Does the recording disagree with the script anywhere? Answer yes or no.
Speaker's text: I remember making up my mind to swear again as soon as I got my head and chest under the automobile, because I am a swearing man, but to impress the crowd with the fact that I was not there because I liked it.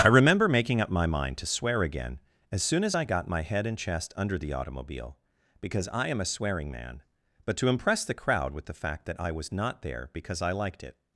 no